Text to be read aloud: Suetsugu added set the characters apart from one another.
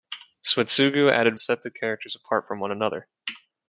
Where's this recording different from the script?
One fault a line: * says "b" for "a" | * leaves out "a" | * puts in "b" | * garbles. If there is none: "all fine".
all fine